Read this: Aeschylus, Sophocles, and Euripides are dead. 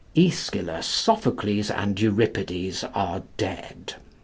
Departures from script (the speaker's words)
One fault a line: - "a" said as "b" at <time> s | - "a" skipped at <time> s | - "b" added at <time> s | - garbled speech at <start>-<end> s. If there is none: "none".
none